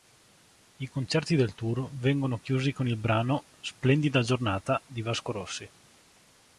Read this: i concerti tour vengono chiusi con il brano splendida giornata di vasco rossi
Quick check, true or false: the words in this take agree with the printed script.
false